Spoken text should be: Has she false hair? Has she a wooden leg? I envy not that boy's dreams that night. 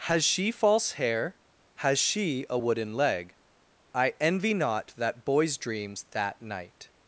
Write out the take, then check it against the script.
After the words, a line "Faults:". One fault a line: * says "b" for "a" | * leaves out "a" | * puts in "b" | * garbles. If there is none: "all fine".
Has she false hair? Has she a wooden leg? I envy not that boy's dreams that night.
Faults:
all fine